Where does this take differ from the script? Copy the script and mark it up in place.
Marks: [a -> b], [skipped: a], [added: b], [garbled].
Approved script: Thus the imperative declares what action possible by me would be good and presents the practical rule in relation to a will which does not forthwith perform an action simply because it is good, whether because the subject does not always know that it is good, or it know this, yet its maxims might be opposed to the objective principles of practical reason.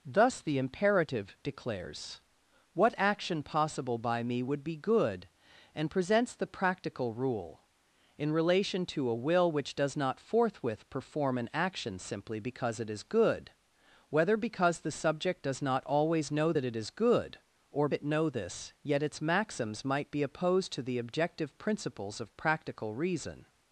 Thus the imperative declares what action possible by me would be good and presents the practical rule in relation to a will which does not forthwith perform an action simply because it is good, whether because the subject does not always know that it is good, or it know this, yet its maxims might be opposed to the objective principles of practical reason.